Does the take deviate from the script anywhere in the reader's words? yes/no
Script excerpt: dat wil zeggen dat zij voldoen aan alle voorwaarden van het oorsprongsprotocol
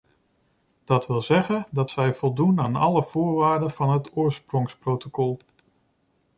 no